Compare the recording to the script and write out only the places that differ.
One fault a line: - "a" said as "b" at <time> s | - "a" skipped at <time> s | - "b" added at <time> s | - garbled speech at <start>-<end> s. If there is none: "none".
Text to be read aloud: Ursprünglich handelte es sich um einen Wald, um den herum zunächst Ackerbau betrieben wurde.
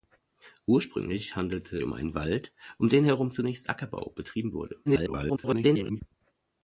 - "es sich" skipped at 1.8 s
- garbled speech at 4.9-6.0 s